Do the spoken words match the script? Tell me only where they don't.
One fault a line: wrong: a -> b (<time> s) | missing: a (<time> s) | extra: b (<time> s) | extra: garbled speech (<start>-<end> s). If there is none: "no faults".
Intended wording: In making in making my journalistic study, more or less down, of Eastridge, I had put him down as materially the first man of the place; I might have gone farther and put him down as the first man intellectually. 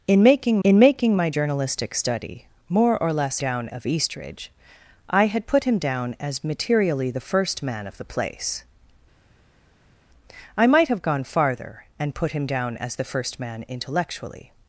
no faults